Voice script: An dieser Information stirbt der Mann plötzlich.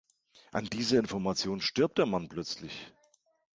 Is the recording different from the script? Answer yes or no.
no